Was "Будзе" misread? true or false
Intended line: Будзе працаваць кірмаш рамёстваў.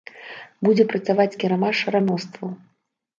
false